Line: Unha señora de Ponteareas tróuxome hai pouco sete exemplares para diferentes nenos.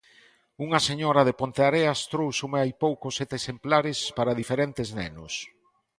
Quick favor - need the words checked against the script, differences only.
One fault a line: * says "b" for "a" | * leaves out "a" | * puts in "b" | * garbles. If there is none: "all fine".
all fine